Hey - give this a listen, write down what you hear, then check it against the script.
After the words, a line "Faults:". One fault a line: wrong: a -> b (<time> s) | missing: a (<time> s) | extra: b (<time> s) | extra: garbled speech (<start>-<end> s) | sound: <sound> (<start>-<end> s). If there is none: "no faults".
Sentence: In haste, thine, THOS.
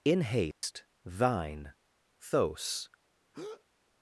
In haste, thine, THOS.
Faults:
sound: dropout (0.5-0.6 s)
sound: breath (3.3-3.6 s)